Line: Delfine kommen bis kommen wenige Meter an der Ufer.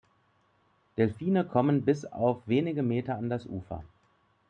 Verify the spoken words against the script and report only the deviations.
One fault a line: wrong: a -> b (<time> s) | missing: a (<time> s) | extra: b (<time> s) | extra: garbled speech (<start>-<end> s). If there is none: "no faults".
wrong: kommen -> auf (2.0 s)
wrong: der -> das (3.3 s)